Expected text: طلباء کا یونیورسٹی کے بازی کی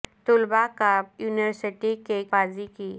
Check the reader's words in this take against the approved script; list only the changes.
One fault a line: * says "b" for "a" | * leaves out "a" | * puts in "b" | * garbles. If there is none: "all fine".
all fine